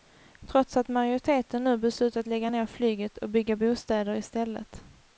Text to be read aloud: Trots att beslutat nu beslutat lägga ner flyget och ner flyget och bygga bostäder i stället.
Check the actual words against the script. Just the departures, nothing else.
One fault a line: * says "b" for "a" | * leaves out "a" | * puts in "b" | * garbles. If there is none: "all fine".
* says "majoriteten" for "beslutat"
* leaves out "ner flyget och"